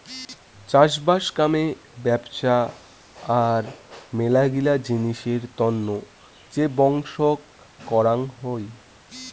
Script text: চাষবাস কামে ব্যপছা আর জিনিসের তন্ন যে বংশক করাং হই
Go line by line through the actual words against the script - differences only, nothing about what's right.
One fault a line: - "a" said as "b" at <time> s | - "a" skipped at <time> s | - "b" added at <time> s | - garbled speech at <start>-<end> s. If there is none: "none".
- "মেলাগিলা" added at 4.1 s